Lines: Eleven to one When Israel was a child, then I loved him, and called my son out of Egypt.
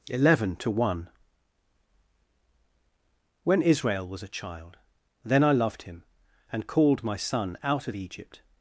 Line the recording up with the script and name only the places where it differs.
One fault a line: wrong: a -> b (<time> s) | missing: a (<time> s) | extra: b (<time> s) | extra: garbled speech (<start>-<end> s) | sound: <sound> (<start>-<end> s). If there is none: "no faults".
no faults